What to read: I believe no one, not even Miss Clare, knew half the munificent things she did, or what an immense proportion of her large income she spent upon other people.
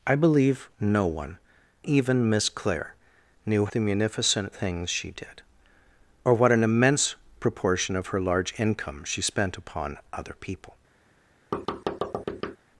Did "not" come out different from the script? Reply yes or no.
yes